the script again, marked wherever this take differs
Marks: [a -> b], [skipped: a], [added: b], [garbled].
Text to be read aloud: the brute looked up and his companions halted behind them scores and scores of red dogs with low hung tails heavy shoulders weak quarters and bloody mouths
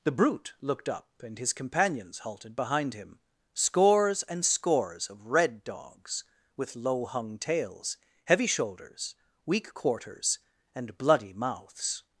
the brute looked up and his companions halted behind [them -> him] scores and scores of red dogs with low hung tails heavy shoulders weak quarters and bloody mouths